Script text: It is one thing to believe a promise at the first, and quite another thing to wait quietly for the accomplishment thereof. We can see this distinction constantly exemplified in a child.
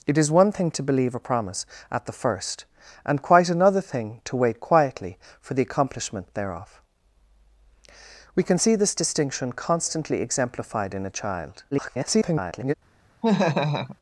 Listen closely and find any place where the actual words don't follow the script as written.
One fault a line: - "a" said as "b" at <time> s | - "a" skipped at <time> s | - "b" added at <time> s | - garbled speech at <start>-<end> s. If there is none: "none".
- garbled speech at 11.7-12.7 s